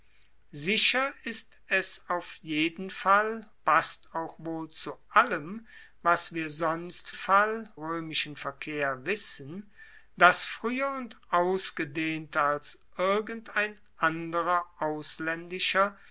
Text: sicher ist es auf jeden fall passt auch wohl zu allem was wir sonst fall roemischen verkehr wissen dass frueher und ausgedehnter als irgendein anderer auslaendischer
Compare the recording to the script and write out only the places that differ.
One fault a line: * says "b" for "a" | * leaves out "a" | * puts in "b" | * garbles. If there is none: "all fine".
all fine